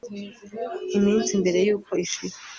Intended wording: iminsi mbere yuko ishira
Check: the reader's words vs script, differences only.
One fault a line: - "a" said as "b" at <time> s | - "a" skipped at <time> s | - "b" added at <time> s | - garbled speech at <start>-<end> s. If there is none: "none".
none